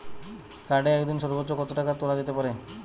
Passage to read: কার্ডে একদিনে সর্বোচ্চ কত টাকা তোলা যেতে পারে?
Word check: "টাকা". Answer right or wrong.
right